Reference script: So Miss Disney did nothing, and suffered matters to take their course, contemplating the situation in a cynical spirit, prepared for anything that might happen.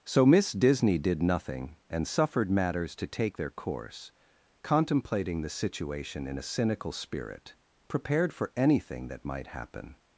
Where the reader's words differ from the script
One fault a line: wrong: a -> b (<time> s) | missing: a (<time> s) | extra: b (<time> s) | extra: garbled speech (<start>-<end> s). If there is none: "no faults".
no faults